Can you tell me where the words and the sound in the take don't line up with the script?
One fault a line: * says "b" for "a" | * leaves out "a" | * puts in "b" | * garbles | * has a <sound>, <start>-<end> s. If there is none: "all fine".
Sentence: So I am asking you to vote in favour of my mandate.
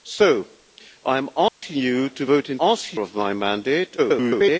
* has a dropout, 1.5-1.6 s
* says "asking" for "favour"
* garbles